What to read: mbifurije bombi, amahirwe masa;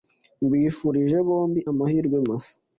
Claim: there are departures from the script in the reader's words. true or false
false